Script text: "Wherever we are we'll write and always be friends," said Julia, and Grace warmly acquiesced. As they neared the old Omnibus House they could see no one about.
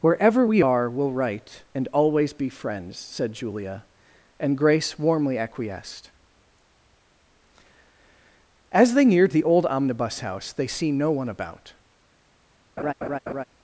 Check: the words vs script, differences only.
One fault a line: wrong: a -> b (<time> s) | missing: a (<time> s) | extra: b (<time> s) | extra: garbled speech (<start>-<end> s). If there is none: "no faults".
missing: could (10.7 s)